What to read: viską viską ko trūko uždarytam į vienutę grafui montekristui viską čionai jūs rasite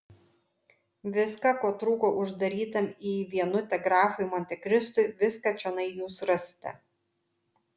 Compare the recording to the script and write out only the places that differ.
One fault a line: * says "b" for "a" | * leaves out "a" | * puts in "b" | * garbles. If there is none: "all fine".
* leaves out "viską"